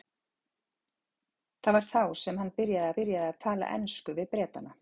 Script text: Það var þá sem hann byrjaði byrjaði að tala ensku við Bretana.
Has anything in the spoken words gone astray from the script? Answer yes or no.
no